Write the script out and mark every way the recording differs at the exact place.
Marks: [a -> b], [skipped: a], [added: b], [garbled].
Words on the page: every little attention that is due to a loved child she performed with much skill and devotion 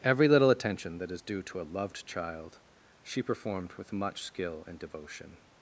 every little attention that is due to a loved child she performed with much skill and devotion